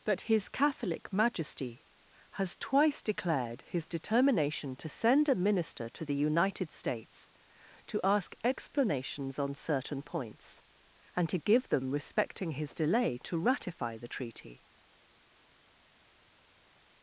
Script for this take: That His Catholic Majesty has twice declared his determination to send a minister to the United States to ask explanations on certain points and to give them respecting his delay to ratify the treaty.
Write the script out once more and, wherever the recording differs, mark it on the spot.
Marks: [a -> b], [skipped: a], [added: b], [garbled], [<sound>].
That His Catholic Majesty has twice declared his determination to send a minister to the United States to ask explanations on certain points and to give them respecting his delay to ratify the treaty.